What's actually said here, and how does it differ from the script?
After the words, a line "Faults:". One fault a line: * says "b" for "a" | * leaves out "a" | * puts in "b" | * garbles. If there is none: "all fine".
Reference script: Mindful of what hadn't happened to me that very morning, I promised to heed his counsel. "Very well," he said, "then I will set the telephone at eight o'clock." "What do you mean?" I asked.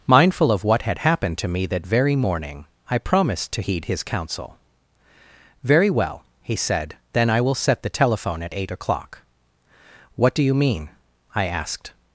Mindful of what had happened to me that very morning, I promised to heed his counsel. "Very well," he said, "then I will set the telephone at eight o'clock." "What do you mean?" I asked.
Faults:
* says "had" for "hadn't"